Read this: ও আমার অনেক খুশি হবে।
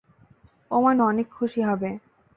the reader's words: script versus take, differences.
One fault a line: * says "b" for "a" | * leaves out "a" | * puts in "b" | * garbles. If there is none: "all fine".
all fine